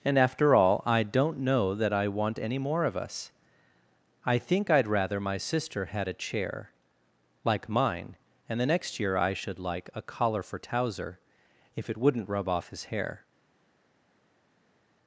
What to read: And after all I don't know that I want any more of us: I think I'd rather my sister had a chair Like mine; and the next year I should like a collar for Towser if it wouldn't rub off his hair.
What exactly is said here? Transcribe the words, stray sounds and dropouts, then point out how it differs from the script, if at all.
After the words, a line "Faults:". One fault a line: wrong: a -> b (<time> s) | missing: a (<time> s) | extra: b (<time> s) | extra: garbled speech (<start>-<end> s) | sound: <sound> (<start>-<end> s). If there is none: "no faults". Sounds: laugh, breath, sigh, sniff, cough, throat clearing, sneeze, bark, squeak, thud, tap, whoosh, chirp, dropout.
And after all I don't know that I want any more of us: I think I'd rather my sister had a chair Like mine; and the next year I should like a collar for Towser if it wouldn't rub off his hair.
Faults:
no faults